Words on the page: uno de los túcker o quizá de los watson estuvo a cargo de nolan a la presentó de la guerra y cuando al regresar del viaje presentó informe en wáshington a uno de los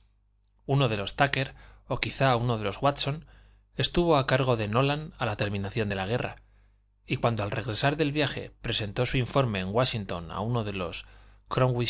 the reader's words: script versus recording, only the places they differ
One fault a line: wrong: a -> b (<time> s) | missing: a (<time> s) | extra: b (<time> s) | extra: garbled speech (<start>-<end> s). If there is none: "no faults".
extra: uno (2.4 s)
wrong: presentó -> terminación (5.3 s)
extra: su (9.0 s)